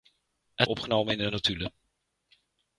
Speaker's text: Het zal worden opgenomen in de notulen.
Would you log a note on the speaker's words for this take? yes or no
yes